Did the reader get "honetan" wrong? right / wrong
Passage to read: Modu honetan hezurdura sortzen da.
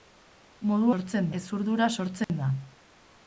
wrong